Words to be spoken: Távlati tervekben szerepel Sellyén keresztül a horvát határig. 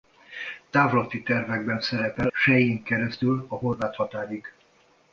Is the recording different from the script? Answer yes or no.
no